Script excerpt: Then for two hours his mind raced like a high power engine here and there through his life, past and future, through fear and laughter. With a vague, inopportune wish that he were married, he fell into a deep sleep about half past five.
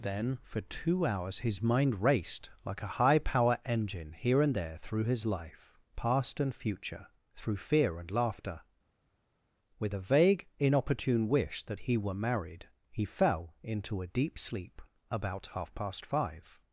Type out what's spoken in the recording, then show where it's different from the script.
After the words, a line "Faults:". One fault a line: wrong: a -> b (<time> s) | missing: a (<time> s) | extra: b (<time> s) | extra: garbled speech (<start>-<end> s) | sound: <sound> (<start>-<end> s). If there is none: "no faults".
Then for two hours his mind raced like a high power engine here and there through his life, past and future, through fear and laughter. With a vague, inopportune wish that he were married, he fell into a deep sleep about half past five.
Faults:
no faults